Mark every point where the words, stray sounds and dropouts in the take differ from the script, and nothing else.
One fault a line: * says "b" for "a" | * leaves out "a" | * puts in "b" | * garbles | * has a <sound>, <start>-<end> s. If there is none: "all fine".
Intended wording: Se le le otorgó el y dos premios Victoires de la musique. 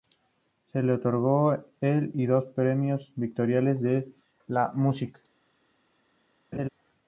* leaves out "le"
* has a laugh, 6.5-6.7 s